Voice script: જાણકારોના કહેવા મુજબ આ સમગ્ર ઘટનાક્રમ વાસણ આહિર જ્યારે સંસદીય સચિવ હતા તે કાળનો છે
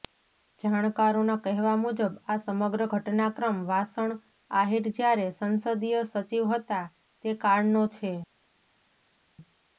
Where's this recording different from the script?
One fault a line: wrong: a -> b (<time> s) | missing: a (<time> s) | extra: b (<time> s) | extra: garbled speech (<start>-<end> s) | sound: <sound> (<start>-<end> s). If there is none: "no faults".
no faults